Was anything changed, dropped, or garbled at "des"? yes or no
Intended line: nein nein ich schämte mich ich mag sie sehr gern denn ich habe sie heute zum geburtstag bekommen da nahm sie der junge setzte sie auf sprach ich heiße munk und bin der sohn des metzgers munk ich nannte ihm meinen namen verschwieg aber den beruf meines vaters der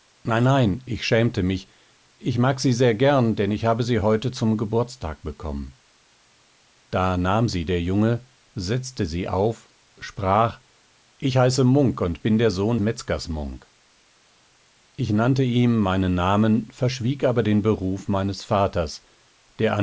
yes